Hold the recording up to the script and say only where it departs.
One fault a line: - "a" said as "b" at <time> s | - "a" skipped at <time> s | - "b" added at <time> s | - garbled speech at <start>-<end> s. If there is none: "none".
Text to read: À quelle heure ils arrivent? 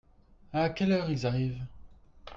none